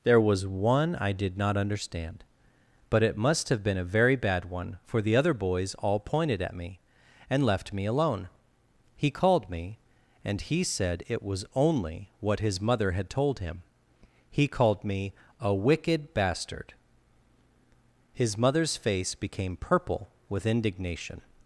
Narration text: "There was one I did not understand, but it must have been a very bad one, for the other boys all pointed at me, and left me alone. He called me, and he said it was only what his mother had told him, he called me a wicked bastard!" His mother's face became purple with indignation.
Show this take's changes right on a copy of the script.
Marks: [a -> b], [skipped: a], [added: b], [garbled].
"There was one I did not understand, but it must have been a very bad one, for the other boys all pointed at me, and left me alone. He called me, and he said it was only what his mother had told him, he called me a wicked bastard!" His mother's face became purple with indignation.